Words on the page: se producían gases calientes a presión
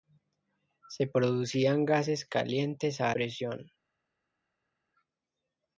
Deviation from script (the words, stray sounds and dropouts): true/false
false